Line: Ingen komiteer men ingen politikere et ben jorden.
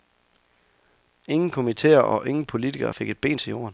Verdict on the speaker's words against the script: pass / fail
fail